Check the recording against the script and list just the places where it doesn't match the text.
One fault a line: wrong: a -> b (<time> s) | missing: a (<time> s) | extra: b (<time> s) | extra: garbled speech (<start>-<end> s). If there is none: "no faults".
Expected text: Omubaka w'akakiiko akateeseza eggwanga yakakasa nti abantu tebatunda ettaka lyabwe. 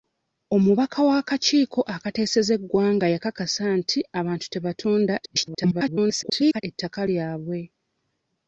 extra: garbled speech (5.2-6.6 s)